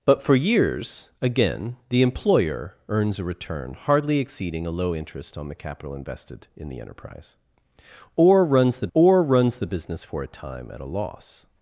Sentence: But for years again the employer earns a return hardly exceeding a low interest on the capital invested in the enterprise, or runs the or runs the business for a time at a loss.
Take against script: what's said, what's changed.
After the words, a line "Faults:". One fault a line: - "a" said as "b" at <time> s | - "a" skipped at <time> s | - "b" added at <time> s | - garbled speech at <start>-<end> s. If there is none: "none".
But for years again the employer earns a return hardly exceeding a low interest on the capital invested in the enterprise, or runs the or runs the business for a time at a loss.
Faults:
none